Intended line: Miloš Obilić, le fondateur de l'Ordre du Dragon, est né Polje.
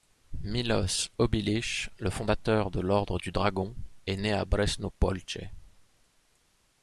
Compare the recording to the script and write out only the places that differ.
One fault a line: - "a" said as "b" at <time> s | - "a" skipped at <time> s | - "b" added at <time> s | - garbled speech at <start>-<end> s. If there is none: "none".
- "à Bresno" added at 4.3 s